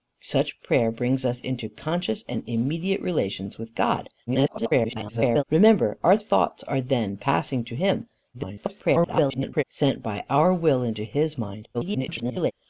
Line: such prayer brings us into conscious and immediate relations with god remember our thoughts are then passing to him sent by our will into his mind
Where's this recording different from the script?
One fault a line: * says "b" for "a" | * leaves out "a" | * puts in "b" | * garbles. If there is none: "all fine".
* garbles
* garbles
* garbles